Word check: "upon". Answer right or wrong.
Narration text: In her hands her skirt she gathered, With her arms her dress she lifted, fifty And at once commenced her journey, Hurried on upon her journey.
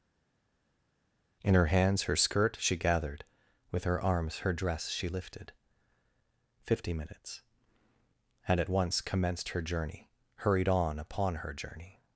right